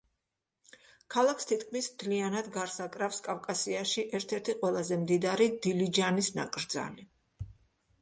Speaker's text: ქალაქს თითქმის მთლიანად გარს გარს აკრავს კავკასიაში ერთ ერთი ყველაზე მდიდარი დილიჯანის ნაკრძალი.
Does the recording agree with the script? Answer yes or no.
no